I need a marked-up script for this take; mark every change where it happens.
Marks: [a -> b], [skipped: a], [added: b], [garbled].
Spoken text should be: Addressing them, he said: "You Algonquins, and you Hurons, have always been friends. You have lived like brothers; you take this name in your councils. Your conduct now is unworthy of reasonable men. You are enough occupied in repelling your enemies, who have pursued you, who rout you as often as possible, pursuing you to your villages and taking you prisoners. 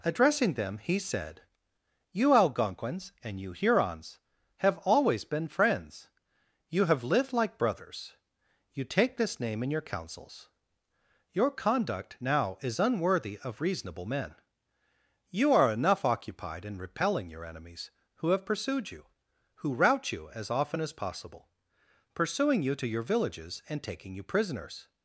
Addressing them, he said: "You Algonquins, and you Hurons, have always been friends. You have lived like brothers; you take this name in your councils. Your conduct now is unworthy of reasonable men. You are enough occupied in repelling your enemies, who have pursued you, who rout you as often as possible, pursuing you to your villages and taking you prisoners.